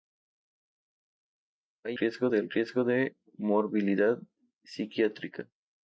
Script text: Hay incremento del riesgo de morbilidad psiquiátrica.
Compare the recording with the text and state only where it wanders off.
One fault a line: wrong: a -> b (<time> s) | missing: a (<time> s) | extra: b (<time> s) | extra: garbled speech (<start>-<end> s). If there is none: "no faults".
wrong: incremento -> riesgo (1.9 s)